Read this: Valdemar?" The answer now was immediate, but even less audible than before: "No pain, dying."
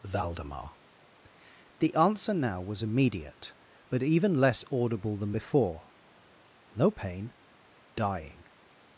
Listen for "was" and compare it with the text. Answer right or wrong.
right